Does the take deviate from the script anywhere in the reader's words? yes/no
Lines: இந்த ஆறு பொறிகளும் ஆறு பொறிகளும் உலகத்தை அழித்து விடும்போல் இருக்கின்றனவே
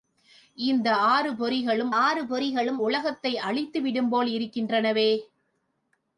no